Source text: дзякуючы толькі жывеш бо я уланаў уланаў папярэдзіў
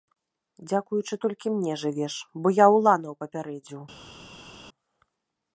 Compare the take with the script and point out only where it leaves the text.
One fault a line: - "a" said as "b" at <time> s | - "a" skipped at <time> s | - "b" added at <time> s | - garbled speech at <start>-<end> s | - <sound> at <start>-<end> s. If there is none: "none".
- "мне" added at 1.6 s
- "уланаў" skipped at 3.1 s